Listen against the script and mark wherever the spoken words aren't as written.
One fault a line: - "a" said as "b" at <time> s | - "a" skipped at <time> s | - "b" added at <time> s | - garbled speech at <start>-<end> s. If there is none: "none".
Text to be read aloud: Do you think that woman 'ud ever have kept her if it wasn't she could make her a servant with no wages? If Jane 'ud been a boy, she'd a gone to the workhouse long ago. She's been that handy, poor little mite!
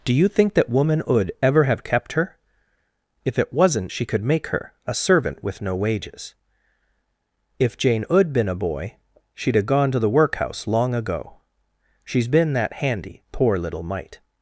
none